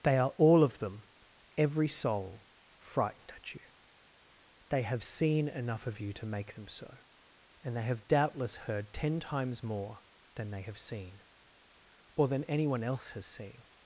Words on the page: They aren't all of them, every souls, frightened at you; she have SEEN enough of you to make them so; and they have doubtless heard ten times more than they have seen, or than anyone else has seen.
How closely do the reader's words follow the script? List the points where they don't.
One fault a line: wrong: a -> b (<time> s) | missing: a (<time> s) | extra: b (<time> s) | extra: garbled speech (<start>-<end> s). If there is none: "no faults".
wrong: aren't -> are (0.2 s)
wrong: souls -> soul (1.9 s)
wrong: she -> they (4.7 s)